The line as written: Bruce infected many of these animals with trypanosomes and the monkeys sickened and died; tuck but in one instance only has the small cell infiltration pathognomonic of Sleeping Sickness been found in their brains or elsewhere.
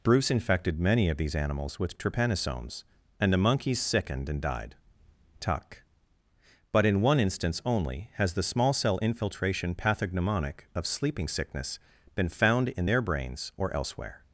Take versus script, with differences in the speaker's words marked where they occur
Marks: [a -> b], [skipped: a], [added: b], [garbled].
Bruce infected many of these animals with trypanosomes and the monkeys sickened and died; tuck but in one instance only has the small cell infiltration pathognomonic of Sleeping Sickness been found in their brains or elsewhere.